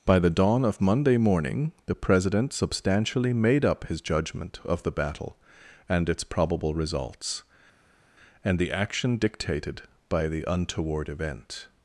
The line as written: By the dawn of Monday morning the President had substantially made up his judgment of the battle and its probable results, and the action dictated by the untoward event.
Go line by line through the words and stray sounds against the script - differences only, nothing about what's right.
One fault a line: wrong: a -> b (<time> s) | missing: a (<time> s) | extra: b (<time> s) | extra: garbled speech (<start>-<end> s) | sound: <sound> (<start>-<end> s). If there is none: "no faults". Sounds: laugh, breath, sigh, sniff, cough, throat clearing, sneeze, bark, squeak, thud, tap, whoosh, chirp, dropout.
missing: had (2.5 s)